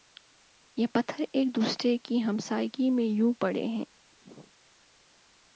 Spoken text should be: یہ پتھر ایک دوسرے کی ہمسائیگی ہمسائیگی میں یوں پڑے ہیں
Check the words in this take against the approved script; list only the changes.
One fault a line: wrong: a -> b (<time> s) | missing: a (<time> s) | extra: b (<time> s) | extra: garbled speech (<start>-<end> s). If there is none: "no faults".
missing: ہمسائیگی (2.9 s)